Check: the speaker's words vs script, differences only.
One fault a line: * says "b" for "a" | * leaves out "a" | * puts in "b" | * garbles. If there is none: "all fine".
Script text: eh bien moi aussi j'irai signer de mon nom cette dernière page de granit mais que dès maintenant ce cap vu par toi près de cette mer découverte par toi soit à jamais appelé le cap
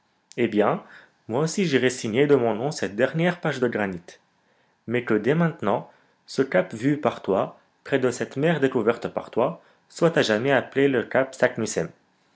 all fine